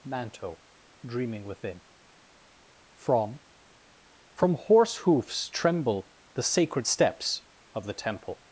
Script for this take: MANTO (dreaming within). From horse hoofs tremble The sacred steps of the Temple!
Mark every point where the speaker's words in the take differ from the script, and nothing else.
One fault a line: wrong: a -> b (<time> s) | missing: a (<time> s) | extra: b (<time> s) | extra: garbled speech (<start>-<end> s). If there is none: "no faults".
extra: From (4.3 s)